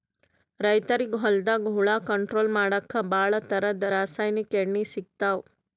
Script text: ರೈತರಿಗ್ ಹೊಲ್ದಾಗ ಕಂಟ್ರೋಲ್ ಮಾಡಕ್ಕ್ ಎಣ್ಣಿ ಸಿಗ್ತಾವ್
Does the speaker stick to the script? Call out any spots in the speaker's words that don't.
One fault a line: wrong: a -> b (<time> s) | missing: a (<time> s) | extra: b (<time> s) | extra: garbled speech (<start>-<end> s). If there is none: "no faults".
extra: ಹುಳ (1.8 s)
extra: ಭಾಳ್ ಥರದ್ ರಾಸಾಯನಿಕ್ (3.1 s)